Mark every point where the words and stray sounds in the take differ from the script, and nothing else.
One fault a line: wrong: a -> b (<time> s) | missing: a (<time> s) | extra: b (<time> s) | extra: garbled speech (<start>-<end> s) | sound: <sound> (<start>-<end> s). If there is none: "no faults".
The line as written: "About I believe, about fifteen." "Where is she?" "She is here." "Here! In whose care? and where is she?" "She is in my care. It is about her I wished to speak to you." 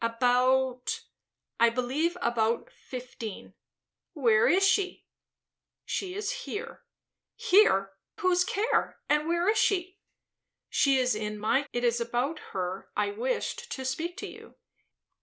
missing: In (7.9 s)
missing: care (11.6 s)